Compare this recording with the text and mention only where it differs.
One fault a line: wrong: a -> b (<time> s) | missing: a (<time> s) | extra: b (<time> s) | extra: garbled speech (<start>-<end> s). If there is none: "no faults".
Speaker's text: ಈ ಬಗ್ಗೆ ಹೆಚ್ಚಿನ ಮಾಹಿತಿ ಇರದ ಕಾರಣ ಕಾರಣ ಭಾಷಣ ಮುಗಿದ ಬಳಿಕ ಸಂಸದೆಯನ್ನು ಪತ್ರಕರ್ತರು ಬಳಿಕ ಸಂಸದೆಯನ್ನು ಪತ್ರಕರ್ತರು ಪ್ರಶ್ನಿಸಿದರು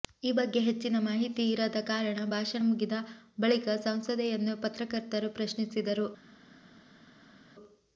missing: ಕಾರಣ (2.3 s)
missing: ಬಳಿಕ ಸಂಸದೆಯನ್ನು ಪತ್ರಕರ್ತರು (5.3 s)